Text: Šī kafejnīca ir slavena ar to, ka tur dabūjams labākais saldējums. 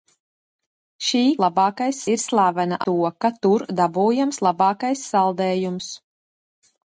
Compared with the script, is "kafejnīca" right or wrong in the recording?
wrong